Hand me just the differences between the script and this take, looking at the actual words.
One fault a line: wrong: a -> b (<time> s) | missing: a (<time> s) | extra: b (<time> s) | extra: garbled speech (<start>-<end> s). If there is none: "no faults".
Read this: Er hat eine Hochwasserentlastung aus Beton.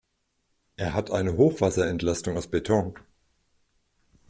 no faults